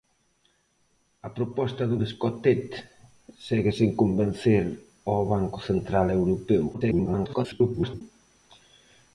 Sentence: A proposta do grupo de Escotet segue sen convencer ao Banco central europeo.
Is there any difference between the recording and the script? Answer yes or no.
yes